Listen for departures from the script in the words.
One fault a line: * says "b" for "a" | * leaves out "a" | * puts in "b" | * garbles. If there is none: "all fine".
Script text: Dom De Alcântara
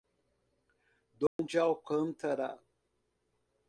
all fine